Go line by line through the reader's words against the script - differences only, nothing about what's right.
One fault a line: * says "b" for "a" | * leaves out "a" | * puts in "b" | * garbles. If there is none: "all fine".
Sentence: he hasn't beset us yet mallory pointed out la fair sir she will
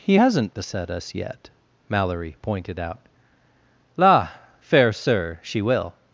all fine